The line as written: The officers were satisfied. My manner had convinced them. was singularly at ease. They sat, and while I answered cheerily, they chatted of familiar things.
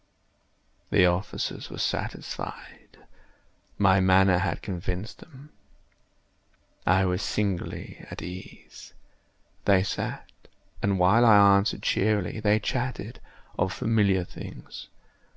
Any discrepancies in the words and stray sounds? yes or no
yes